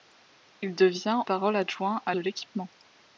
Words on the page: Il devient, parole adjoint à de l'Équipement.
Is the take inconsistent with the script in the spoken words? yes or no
no